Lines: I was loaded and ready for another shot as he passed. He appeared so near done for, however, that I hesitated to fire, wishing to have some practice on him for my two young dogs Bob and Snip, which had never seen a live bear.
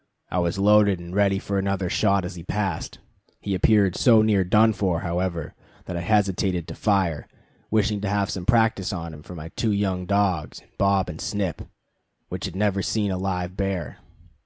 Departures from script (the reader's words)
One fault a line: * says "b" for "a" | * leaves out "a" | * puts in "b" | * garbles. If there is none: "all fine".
all fine